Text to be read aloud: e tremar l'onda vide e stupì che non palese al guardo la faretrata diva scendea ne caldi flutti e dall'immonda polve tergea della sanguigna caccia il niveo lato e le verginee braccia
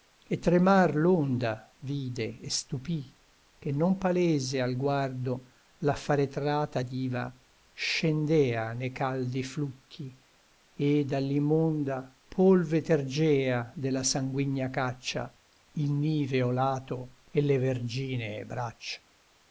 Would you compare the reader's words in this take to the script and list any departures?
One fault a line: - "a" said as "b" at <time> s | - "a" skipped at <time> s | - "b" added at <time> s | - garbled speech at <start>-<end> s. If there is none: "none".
none